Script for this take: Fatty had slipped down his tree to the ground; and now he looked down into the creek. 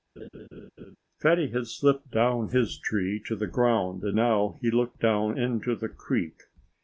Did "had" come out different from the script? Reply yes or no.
no